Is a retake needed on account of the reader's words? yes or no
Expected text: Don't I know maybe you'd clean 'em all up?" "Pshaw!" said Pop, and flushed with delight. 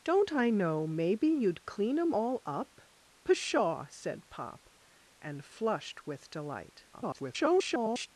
yes